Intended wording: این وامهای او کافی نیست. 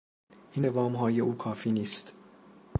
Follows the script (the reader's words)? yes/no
yes